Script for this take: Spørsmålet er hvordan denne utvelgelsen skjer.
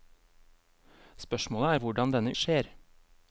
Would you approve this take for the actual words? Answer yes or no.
no